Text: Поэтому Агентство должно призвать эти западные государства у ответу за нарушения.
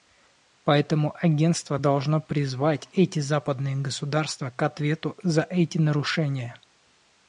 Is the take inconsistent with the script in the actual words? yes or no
yes